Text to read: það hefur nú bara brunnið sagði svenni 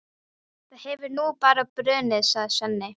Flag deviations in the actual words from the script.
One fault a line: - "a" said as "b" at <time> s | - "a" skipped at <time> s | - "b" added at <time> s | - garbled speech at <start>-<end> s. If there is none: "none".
none